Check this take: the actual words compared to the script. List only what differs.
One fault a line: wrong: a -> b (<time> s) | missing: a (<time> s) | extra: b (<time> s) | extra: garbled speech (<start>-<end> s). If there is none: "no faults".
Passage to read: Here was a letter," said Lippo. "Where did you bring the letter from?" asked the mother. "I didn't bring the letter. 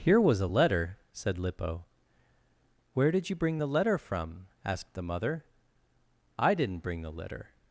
no faults